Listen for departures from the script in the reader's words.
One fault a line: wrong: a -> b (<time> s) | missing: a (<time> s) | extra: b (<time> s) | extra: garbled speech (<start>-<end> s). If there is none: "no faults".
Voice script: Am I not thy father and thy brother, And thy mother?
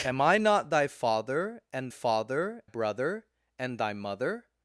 wrong: thy -> father (1.9 s)